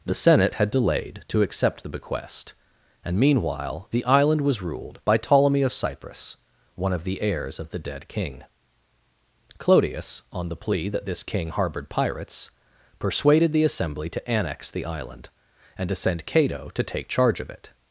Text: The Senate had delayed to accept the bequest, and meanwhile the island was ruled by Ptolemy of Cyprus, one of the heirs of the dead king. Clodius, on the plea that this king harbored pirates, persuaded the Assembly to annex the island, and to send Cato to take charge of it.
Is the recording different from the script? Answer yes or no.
no